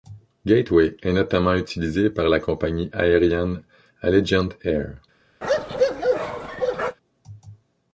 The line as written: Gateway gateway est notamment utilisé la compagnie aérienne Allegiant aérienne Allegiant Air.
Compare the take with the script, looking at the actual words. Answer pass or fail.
fail